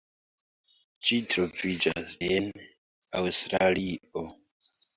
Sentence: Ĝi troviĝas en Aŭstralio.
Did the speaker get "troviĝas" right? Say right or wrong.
right